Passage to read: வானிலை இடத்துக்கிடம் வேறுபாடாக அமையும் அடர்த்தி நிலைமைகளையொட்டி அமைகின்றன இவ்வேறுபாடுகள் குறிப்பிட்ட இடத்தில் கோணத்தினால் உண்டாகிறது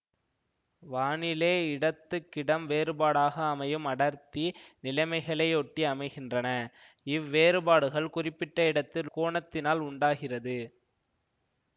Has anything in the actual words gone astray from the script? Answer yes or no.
no